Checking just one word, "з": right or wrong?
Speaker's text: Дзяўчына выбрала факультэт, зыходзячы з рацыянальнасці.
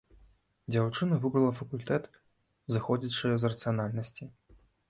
right